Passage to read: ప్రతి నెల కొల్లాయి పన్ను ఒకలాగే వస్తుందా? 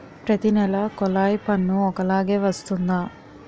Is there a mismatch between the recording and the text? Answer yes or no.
no